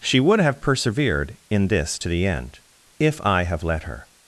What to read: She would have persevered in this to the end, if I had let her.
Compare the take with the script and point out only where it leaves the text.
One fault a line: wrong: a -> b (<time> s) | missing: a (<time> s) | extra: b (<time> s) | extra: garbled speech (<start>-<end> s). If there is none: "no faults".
wrong: had -> have (3.4 s)